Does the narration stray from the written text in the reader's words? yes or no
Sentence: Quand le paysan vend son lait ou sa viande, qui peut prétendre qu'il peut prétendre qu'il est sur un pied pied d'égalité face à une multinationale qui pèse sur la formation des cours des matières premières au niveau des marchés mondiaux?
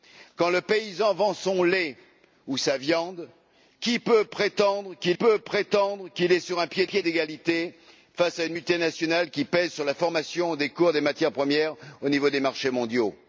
no